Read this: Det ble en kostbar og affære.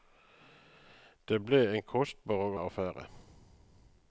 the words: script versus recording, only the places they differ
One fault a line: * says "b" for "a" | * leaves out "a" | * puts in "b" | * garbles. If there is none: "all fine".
all fine